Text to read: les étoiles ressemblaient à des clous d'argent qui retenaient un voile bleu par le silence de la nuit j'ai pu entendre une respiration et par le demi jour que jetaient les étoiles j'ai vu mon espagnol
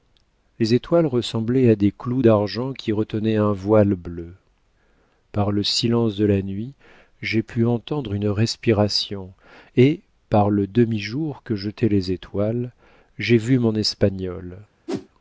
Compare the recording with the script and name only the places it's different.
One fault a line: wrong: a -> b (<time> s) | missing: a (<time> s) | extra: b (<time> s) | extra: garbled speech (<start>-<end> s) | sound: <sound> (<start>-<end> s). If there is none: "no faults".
sound: whoosh (14.9-15.1 s)